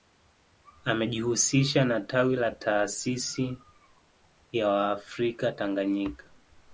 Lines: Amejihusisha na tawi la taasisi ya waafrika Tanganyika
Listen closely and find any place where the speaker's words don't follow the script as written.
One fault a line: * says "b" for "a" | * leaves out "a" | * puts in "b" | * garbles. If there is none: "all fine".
all fine